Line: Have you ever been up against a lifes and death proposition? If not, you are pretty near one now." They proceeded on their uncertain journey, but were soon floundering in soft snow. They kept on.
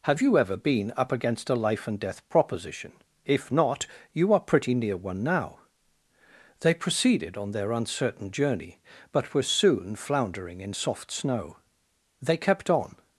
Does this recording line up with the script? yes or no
no